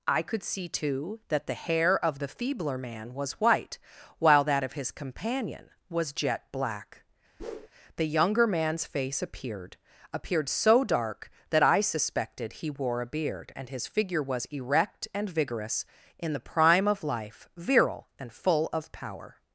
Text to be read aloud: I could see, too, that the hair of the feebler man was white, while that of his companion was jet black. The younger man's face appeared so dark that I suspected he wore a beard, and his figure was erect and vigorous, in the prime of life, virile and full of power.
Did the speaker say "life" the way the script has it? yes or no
yes